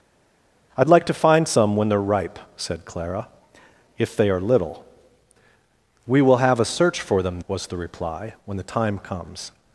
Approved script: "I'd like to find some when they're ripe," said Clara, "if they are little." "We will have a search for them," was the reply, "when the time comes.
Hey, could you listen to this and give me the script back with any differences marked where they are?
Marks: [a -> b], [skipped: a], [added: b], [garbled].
"I'd like to find some when they're ripe," said Clara, "if they are little." "We will have a search for them," was the reply, "when the time comes.